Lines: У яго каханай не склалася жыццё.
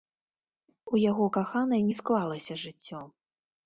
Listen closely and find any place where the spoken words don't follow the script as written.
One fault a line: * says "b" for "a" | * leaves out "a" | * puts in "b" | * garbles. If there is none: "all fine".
all fine